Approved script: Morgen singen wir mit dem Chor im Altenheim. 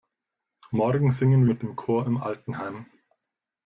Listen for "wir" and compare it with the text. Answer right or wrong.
wrong